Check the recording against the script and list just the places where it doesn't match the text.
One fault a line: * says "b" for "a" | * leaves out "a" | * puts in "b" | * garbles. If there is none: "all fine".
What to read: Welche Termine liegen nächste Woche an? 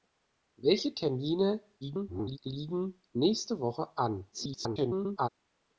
* garbles
* garbles